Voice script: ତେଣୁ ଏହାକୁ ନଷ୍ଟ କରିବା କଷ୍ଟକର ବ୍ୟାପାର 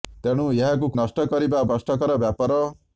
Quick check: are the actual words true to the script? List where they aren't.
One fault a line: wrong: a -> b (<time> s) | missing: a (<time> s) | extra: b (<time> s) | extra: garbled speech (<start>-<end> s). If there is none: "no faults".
no faults